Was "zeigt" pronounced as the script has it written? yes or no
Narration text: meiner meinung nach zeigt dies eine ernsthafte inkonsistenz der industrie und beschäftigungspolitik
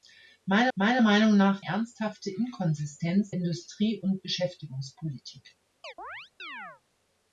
no